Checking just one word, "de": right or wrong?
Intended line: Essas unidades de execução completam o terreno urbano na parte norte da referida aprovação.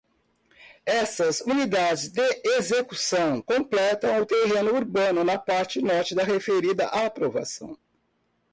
right